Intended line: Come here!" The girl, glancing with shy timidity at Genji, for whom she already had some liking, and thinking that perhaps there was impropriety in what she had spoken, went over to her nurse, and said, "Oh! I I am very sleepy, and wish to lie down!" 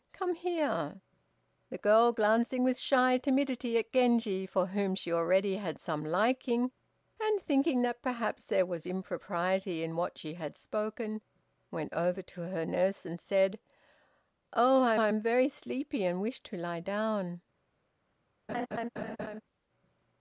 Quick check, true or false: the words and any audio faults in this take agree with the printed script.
false